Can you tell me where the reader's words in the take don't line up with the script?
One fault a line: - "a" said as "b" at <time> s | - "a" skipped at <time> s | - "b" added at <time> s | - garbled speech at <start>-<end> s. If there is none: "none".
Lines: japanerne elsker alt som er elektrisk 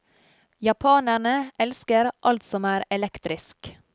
none